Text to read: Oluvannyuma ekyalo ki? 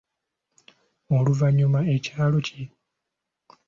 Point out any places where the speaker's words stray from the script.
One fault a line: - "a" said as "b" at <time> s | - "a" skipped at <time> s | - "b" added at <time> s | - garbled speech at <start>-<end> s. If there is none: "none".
none